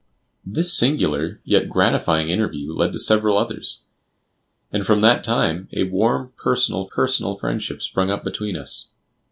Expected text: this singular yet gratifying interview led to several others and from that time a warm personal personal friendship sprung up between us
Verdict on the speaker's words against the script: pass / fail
pass